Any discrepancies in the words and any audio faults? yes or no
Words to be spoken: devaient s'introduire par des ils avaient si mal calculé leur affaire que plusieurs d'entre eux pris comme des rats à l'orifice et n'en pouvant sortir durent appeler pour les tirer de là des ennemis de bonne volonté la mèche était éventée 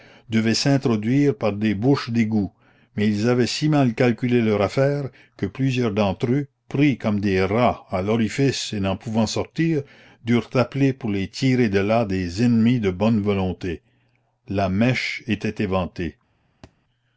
yes